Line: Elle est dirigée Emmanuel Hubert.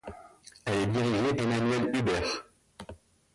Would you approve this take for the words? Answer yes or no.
yes